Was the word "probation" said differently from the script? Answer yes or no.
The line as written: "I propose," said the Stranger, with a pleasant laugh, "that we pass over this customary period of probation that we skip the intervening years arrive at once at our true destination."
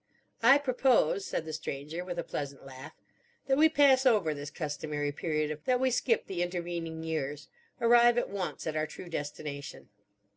yes